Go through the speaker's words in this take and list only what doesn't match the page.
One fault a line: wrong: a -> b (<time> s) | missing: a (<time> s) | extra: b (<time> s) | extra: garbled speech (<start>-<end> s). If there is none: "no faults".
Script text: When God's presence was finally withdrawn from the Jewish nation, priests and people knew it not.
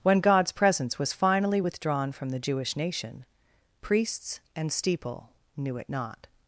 wrong: people -> steeple (4.7 s)